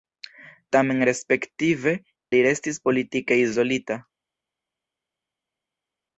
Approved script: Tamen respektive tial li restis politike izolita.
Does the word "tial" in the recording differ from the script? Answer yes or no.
yes